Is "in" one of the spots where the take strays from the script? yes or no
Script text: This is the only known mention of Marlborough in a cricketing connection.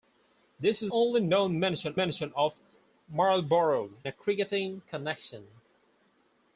yes